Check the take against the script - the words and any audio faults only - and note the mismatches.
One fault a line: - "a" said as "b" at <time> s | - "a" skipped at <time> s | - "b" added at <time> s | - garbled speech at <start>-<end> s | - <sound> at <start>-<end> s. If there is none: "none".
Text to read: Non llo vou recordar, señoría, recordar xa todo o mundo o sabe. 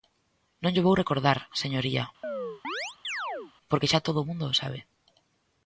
- chirp at 2.2-3.5 s
- "recordar" said as "porque" at 3.7 s